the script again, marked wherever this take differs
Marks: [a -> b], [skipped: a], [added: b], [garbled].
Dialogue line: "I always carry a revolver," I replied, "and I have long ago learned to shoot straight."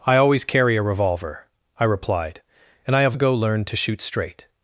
"I always carry a revolver," I replied, "and I have [skipped: long] ago learned to shoot straight."